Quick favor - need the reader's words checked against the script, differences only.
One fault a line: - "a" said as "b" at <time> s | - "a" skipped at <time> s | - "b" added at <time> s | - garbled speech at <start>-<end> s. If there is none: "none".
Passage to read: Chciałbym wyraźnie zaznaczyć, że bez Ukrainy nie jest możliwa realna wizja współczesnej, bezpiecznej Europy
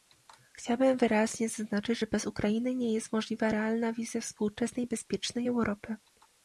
none